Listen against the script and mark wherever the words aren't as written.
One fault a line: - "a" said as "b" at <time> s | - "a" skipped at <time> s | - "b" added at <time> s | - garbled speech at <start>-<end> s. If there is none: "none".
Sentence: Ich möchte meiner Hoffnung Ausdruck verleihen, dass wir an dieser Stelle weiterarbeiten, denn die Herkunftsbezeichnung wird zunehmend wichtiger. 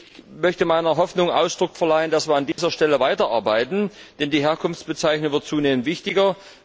none